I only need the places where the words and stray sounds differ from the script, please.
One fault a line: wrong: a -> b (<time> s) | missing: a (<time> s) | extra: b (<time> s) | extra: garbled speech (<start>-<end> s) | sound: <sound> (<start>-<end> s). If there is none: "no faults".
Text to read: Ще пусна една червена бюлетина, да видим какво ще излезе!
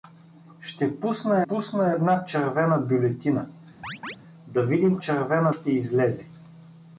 extra: пусна (1.5 s)
sound: chirp (3.8-4.2 s)
wrong: какво -> червена (5.0 s)